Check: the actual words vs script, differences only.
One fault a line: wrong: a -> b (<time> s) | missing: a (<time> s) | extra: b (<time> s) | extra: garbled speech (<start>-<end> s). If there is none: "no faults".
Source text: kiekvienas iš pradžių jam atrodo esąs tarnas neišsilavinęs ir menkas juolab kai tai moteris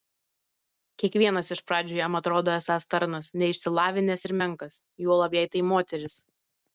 wrong: kai -> jei (5.4 s)